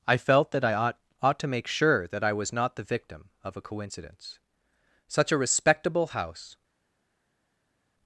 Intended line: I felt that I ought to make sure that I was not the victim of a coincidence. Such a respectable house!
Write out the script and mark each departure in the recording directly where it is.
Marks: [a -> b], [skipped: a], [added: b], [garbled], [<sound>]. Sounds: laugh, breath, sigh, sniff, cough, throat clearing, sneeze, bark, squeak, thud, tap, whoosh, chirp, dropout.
I felt that I ought [added: ought] to make sure that I was not the victim of a coincidence. Such a respectable house!